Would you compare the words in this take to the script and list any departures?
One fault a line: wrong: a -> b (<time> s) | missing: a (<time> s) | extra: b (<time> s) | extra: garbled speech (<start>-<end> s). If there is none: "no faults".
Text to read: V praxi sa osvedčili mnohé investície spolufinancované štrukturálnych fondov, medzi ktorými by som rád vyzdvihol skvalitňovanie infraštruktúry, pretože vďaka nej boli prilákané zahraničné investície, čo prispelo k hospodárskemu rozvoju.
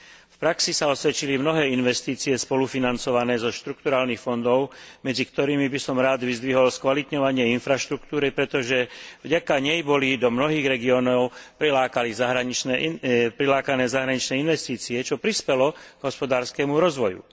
extra: zo (3.4 s)
extra: do mnohých regiónov (10.2 s)